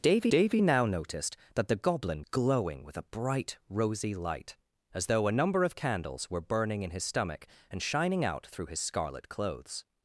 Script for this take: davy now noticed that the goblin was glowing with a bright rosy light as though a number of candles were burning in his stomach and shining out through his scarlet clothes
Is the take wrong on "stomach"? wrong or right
right